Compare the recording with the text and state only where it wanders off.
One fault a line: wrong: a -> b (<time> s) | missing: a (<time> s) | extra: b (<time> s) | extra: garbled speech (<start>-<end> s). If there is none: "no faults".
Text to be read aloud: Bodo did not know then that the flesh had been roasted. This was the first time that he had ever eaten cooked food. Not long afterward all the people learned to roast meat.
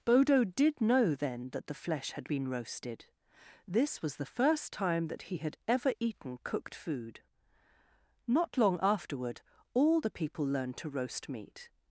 missing: not (0.8 s)